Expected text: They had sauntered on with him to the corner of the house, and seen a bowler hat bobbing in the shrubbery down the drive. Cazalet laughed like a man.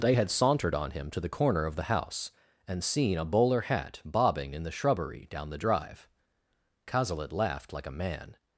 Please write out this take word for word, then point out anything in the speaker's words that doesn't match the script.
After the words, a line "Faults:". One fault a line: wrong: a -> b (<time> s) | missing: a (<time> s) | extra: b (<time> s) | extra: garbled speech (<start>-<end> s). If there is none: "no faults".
They had sauntered on him to the corner of the house, and seen a bowler hat bobbing in the shrubbery down the drive. Cazalet laughed like a man.
Faults:
missing: with (0.9 s)